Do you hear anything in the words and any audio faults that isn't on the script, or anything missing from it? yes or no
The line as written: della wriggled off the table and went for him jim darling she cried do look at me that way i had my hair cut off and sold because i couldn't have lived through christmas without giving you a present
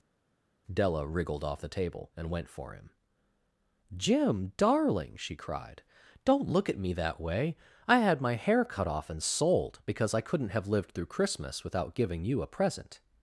yes